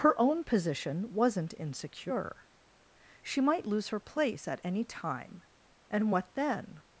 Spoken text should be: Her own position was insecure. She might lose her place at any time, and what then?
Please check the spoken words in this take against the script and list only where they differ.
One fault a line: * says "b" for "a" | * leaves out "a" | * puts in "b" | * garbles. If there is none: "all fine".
* says "wasn't" for "was"